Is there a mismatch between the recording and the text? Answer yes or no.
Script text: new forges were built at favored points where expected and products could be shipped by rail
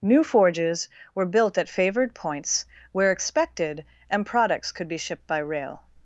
no